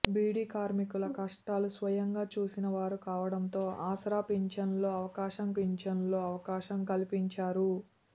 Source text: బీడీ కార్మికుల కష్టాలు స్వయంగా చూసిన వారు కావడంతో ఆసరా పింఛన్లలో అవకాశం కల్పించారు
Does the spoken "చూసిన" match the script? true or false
true